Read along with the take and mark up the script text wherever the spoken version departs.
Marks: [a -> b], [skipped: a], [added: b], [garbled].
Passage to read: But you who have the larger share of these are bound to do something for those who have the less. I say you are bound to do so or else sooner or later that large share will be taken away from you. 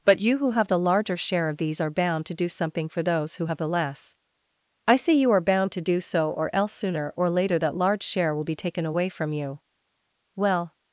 But you who have the larger share of these are bound to do something for those who have the less. I say you are bound to do so or else sooner or later that large share will be taken away from you. [added: Well]